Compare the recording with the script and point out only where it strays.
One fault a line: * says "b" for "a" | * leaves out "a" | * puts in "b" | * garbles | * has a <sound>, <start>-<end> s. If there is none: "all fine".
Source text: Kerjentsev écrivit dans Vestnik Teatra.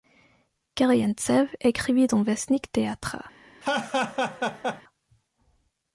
* has a laugh, 3.6-4.8 s